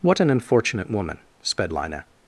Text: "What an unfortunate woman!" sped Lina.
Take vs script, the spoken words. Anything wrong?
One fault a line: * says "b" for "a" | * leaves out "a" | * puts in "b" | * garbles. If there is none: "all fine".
all fine